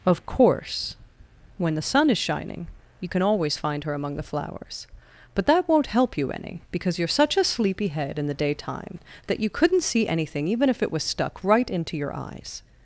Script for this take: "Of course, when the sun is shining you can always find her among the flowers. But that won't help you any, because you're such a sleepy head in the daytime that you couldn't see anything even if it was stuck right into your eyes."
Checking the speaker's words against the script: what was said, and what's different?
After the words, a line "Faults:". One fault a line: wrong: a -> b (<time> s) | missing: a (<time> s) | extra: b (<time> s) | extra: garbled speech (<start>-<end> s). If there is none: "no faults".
"Of course, when the sun is shining you can always find her among the flowers. But that won't help you any, because you're such a sleepy head in the daytime that you couldn't see anything even if it was stuck right into your eyes."
Faults:
no faults